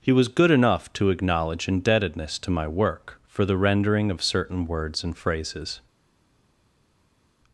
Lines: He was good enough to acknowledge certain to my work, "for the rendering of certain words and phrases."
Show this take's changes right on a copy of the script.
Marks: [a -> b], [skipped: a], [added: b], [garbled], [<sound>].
He was good enough to acknowledge [certain -> indebtedness] to my work, "for the rendering of certain words and phrases."